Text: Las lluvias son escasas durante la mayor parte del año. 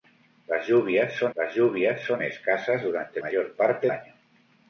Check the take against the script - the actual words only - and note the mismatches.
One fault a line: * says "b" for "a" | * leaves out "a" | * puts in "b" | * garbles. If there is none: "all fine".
* puts in "las lluvias son"
* leaves out "la"
* leaves out "del"